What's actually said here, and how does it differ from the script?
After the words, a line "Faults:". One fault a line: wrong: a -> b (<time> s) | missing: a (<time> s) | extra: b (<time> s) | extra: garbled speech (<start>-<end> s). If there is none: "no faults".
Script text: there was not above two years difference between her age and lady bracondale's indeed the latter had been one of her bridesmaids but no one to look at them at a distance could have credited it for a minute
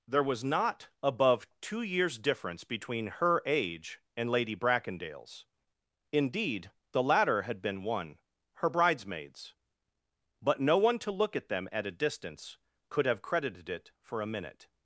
there was not above two years difference between her age and lady bracondale's indeed the latter had been one her bridesmaids but no one to look at them at a distance could have credited it for a minute
Faults:
missing: of (8.2 s)